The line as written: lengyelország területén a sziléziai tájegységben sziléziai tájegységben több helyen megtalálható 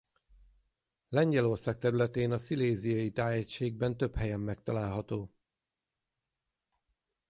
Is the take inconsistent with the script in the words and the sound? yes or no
yes